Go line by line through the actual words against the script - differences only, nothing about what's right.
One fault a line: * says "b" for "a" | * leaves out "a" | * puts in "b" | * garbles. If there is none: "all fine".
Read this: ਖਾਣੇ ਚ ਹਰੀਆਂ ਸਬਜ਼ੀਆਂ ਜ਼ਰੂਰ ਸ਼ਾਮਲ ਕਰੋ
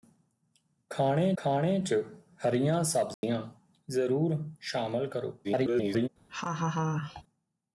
* puts in "ਖਾਣੇ"
* garbles